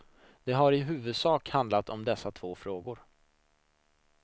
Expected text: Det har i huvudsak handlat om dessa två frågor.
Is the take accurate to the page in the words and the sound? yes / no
yes